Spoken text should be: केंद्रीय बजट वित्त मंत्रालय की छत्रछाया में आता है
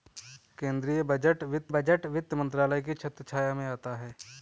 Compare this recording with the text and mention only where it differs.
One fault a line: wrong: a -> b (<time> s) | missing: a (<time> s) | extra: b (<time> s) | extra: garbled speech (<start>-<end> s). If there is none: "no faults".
extra: बजट वित्त (1.7 s)